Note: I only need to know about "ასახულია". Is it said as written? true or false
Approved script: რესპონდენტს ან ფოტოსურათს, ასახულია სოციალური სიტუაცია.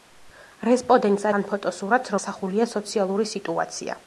true